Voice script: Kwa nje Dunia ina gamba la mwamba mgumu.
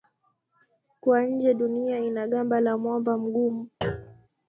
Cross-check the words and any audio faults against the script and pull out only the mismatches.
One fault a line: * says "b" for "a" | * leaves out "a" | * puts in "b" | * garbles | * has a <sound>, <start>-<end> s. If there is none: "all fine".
* has a thud, 3.8-4.3 s